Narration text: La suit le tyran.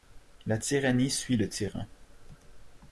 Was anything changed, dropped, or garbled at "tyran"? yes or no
no